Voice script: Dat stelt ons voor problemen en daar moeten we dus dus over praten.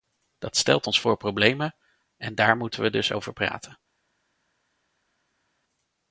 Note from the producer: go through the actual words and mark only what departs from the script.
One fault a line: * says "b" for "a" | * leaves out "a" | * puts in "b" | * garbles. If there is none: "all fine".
* leaves out "dus"